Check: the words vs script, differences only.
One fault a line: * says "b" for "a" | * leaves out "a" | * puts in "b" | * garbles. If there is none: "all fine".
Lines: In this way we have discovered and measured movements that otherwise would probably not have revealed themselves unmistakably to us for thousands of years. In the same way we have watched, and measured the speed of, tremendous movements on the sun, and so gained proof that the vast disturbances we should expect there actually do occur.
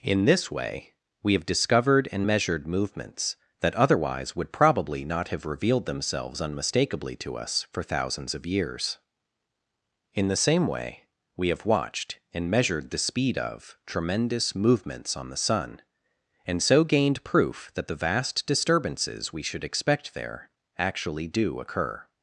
all fine